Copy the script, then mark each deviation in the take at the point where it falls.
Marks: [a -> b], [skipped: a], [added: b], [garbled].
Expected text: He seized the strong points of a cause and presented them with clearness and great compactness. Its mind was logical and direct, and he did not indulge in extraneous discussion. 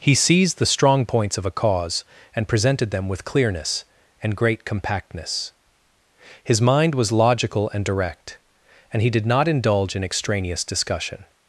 He seized the strong points of a cause and presented them with clearness and great compactness. [Its -> His] mind was logical and direct, and he did not indulge in extraneous discussion.